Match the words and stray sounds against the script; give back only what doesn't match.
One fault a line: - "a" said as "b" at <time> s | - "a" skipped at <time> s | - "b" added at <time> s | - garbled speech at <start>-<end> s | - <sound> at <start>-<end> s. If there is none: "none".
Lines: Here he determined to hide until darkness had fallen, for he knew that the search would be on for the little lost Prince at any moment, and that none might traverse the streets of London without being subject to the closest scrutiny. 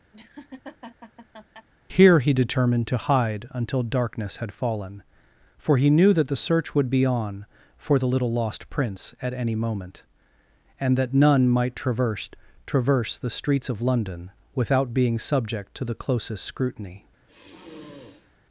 - laugh at 0.1-1.7 s
- "traverse" added at 12.7 s
- sigh at 17.2-18.4 s